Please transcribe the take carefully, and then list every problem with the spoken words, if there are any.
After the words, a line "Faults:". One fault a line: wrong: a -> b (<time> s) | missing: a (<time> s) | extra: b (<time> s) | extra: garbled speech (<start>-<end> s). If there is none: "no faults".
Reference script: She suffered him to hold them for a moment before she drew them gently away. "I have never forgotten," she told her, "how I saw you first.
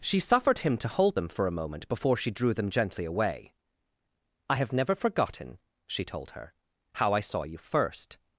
She suffered him to hold them for a moment before she drew them gently away. "I have never forgotten," she told her, "how I saw you first.
Faults:
no faults